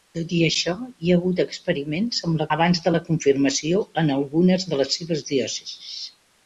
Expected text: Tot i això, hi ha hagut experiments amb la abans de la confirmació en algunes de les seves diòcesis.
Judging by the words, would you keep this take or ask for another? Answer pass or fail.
pass